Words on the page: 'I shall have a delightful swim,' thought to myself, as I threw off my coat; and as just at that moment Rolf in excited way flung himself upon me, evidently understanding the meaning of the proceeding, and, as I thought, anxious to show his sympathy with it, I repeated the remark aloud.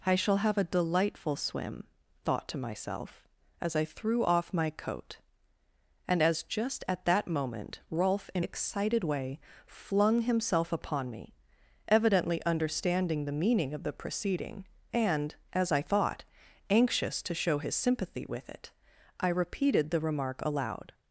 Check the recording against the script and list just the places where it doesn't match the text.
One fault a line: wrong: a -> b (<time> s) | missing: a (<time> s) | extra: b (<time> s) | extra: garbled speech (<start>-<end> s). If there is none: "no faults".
no faults